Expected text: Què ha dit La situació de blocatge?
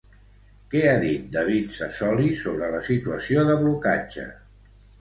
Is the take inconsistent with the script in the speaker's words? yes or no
yes